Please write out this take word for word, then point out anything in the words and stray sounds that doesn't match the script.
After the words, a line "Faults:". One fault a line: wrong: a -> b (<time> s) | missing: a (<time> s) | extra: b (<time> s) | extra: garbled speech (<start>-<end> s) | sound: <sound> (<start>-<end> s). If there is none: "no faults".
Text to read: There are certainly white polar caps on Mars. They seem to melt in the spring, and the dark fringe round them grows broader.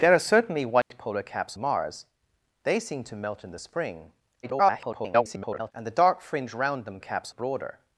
There are certainly white polar caps Mars. They seem to melt in the spring, [garbled] and the dark fringe round them caps broader.
Faults:
sound: dropout (0.8-0.9 s)
missing: on (1.6 s)
extra: garbled speech (4.4-5.7 s)
wrong: grows -> caps (7.0 s)